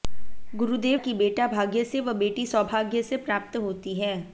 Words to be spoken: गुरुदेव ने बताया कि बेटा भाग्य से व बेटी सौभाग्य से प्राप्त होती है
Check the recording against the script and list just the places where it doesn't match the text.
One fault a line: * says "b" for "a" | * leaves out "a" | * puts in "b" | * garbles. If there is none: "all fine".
* leaves out "ने बताया"